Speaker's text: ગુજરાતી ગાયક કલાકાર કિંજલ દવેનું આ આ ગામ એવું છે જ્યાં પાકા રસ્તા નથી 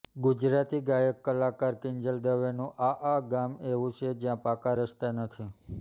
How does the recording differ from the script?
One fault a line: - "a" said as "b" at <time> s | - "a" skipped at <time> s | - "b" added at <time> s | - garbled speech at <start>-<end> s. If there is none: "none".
none